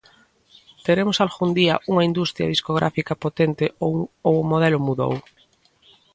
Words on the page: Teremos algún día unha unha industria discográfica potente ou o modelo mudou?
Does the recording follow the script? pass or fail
fail